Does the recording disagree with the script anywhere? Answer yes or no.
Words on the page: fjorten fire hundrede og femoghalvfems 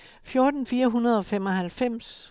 no